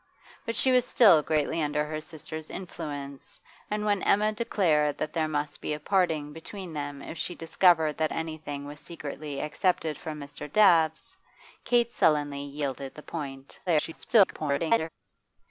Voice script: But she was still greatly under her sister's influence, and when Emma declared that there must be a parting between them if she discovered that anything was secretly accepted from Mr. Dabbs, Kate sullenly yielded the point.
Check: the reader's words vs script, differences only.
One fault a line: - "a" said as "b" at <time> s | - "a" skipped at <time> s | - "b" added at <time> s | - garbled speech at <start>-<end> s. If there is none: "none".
- garbled speech at 13.7-14.9 s